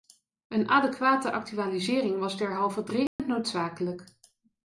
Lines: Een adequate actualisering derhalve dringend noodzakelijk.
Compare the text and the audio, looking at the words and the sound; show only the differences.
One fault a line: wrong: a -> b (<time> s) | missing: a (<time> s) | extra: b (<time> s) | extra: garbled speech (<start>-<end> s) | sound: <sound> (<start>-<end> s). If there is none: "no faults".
extra: was (2.2 s)
sound: dropout (3.1-3.2 s)